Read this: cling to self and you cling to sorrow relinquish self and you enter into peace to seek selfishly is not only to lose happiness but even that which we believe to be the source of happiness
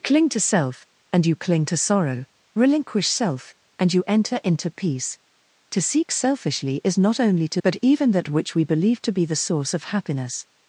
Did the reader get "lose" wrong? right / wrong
wrong